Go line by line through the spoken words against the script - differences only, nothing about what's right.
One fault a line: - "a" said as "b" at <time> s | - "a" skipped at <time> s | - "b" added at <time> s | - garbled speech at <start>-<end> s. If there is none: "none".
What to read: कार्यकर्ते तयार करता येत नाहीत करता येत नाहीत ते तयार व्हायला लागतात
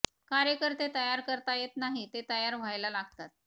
- "करता येत नाहीत" skipped at 2.1 s